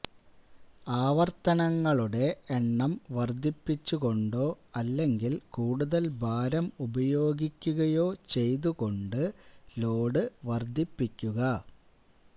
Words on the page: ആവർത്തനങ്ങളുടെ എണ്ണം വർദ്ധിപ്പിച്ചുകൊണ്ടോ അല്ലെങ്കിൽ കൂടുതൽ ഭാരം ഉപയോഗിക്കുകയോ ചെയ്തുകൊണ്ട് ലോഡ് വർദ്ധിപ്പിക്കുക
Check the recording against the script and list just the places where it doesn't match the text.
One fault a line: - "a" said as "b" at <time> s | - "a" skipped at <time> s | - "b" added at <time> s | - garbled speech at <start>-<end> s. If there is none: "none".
none